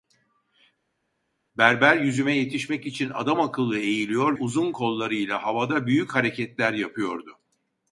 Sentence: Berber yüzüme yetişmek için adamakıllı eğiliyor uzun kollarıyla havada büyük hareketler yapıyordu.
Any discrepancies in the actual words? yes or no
no